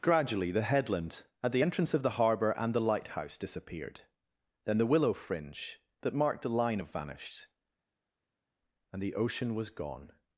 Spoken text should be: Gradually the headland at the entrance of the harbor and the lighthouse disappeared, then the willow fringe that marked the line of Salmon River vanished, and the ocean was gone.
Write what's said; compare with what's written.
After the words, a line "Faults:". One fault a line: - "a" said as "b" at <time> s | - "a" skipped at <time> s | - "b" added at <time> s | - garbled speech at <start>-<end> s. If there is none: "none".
Gradually the headland at the entrance of the harbor and the lighthouse disappeared, then the willow fringe that marked the line of vanished, and the ocean was gone.
Faults:
- "Salmon River" skipped at 6.9 s